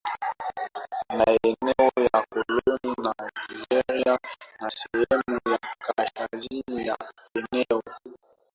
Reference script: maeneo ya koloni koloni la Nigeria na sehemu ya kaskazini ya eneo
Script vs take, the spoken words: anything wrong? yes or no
yes